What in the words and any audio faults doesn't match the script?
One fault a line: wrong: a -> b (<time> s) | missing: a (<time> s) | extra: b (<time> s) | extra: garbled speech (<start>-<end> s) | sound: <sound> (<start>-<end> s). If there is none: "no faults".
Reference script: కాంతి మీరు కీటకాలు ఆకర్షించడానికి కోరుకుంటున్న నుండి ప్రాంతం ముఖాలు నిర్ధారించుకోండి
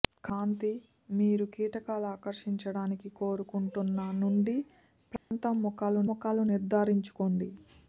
sound: dropout (5.2-5.3 s)
extra: ముఖాలు (6.1 s)